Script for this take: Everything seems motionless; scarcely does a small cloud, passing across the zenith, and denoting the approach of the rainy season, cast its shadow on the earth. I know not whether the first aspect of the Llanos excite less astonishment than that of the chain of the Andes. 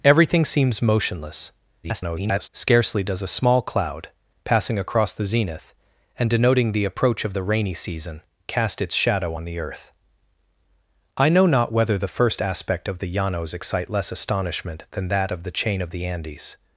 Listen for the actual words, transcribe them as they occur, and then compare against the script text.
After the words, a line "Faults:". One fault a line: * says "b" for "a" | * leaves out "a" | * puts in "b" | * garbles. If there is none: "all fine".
Everything seems motionless; [garbled] scarcely does a small cloud, passing across the zenith, and denoting the approach of the rainy season, cast its shadow on the earth. I know not whether the first aspect of the Llanos excite less astonishment than that of the chain of the Andes.
Faults:
* garbles